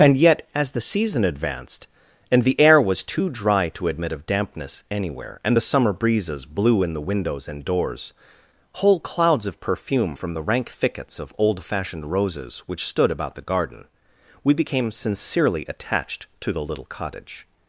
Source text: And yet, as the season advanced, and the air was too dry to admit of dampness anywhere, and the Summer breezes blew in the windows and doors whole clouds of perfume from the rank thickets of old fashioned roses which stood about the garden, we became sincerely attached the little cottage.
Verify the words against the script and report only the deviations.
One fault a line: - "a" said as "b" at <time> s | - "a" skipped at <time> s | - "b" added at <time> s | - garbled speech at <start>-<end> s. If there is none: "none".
- "to" added at 16.4 s